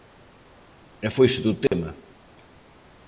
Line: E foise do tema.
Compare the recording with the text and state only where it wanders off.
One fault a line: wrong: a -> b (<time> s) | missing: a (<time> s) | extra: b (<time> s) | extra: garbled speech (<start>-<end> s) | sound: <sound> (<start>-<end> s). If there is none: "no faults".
sound: dropout (1.7-1.7 s)